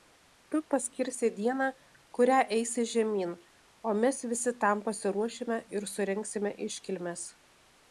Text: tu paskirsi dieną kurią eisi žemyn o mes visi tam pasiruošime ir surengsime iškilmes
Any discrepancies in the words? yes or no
no